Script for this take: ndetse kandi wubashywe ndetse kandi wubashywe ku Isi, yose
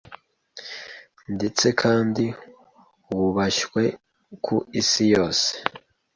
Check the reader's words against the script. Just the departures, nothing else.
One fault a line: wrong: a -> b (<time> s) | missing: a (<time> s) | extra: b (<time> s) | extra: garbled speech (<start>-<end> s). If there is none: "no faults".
missing: ndetse kandi wubashywe (3.8 s)